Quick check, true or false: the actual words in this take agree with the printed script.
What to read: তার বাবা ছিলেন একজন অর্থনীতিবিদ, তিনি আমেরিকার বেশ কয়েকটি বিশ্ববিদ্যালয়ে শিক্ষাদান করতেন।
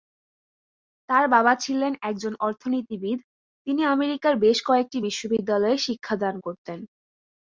true